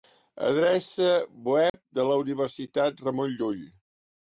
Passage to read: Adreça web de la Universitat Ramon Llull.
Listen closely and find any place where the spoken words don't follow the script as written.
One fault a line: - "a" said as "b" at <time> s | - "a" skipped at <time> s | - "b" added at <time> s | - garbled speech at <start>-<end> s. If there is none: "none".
none